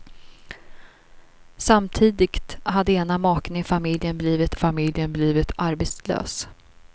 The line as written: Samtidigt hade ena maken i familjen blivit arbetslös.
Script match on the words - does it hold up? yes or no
no